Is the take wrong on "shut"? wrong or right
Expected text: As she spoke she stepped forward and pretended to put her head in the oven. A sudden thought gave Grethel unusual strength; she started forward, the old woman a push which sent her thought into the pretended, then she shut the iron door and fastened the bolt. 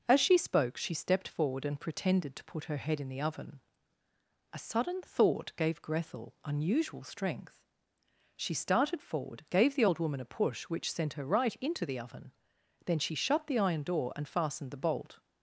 right